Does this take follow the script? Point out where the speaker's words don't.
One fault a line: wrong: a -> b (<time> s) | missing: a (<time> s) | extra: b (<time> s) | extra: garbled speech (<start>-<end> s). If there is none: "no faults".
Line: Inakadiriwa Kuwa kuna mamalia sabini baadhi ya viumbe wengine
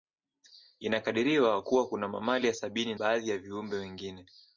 no faults